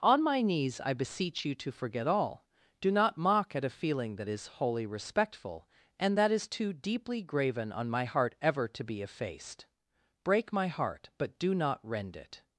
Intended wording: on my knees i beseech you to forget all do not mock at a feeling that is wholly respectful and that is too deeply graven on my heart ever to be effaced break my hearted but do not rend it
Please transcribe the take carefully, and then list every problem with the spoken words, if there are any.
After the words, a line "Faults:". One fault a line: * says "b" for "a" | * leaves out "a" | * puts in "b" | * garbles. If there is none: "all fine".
on my knees i beseech you to forget all do not mock at a feeling that is wholly respectful and that is too deeply graven on my heart ever to be effaced break my heart but do not rend it
Faults:
* says "heart" for "hearted"